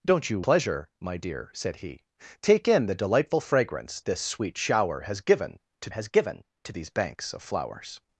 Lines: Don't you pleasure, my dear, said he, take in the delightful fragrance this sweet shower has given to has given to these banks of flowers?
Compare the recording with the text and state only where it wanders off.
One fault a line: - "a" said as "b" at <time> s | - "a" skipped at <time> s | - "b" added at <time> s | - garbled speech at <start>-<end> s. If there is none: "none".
none